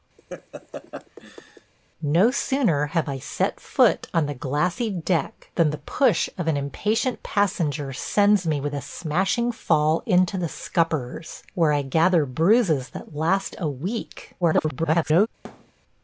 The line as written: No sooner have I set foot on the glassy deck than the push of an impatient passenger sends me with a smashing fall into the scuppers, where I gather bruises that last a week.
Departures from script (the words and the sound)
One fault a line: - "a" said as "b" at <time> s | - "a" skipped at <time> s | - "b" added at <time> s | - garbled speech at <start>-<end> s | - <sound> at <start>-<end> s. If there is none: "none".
- laugh at 0.2-1.7 s
- garbled speech at 14.4-15.3 s
- thud at 15.4-15.7 s